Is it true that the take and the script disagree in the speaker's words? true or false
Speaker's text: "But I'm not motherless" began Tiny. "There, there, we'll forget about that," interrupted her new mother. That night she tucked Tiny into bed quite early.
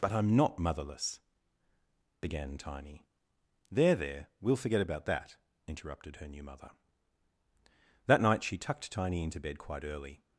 false